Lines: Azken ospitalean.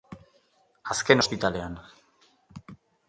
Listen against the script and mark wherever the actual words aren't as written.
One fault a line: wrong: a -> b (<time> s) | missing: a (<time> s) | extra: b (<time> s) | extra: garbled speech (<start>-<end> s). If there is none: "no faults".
no faults